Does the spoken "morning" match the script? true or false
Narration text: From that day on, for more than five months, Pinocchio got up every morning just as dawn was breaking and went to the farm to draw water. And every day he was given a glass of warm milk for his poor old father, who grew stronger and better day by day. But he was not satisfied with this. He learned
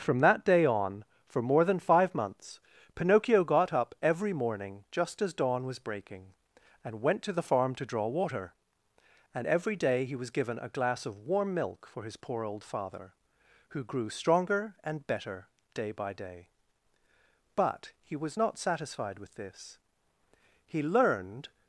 true